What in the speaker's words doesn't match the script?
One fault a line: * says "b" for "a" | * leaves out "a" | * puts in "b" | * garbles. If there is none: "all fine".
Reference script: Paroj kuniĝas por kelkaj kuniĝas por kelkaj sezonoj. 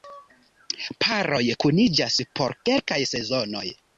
* leaves out "kuniĝas por kelkaj"